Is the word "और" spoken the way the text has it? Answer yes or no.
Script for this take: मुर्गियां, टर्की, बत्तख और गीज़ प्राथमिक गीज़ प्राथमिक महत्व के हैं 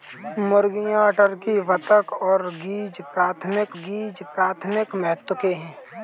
yes